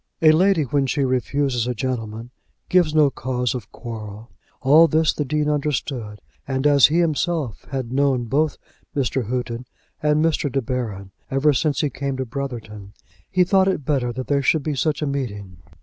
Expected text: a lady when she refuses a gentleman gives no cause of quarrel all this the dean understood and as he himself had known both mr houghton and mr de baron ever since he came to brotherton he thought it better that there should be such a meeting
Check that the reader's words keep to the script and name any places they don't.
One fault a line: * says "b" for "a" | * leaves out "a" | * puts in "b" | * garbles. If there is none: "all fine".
all fine